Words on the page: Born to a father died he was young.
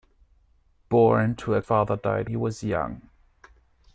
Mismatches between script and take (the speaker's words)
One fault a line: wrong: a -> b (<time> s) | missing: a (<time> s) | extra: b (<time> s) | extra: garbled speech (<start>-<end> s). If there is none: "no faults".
no faults